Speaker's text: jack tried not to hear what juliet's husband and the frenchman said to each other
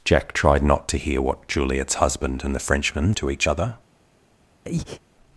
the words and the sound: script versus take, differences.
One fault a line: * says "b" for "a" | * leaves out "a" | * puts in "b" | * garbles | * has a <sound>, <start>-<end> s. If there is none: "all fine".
* leaves out "said"
* has a breath, 4.6-5.0 s